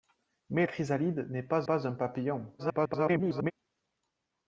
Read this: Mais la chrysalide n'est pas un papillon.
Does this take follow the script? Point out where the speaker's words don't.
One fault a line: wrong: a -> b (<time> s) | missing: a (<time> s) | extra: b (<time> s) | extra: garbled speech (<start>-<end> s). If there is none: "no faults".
missing: la (0.7 s)
extra: pas (1.6 s)
extra: garbled speech (2.6-3.5 s)